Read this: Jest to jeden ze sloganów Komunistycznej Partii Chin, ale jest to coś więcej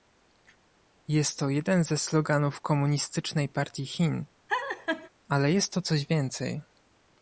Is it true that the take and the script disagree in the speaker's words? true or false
false